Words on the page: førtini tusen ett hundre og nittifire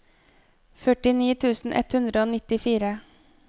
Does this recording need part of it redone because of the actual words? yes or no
no